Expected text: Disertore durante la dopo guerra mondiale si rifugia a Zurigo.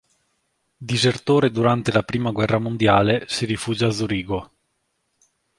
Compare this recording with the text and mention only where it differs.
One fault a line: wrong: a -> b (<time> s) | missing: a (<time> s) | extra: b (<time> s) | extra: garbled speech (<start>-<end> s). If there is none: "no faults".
wrong: dopo -> prima (2.0 s)